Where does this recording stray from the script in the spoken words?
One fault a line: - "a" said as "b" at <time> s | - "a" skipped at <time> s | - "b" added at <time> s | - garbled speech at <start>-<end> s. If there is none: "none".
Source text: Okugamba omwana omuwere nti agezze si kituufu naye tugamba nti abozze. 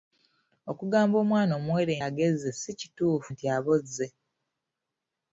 - "nti" skipped at 1.9 s
- "naye tugamba" skipped at 3.3 s